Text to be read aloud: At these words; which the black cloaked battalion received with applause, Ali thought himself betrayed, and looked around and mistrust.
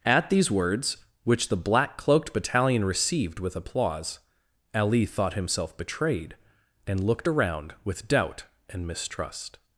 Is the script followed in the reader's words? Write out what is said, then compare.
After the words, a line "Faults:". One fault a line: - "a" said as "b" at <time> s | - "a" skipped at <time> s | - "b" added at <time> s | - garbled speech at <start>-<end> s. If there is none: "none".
At these words; which the black cloaked battalion received with applause, Ali thought himself betrayed, and looked around with doubt and mistrust.
Faults:
- "with doubt" added at 7.8 s